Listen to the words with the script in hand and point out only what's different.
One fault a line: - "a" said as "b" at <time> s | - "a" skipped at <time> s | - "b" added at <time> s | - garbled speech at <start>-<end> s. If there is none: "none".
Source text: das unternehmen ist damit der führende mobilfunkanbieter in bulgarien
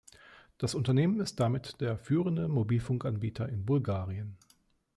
none